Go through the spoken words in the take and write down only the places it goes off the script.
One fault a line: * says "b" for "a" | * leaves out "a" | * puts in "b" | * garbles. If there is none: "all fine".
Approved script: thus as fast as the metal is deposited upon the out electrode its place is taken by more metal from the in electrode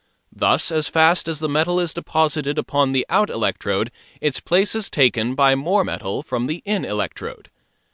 all fine